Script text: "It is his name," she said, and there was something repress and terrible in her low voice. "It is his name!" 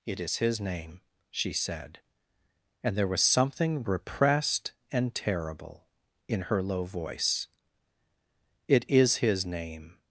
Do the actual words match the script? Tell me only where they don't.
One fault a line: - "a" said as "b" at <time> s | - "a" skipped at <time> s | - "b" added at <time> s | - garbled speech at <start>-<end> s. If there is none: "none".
- "repress" said as "repressed" at 3.8 s